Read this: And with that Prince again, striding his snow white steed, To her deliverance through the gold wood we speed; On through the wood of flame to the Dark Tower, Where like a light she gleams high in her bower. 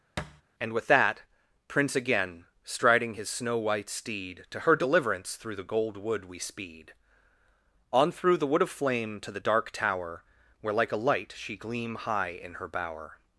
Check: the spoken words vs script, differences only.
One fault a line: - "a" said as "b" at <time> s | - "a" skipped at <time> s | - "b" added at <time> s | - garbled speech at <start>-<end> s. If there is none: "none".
- "gleams" said as "gleam" at 11.6 s